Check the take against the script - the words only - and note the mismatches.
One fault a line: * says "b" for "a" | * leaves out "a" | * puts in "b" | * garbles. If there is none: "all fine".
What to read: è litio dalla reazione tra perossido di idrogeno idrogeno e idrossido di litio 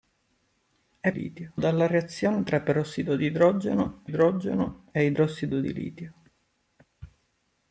all fine